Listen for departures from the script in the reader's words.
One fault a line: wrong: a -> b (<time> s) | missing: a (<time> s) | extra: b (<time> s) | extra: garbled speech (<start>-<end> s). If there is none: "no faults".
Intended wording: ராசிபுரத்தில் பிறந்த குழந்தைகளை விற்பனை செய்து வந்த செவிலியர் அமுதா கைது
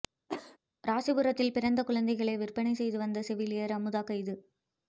no faults